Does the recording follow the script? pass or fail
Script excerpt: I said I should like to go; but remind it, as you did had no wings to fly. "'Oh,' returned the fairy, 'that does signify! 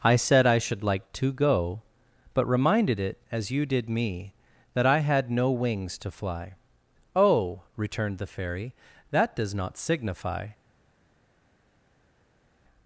fail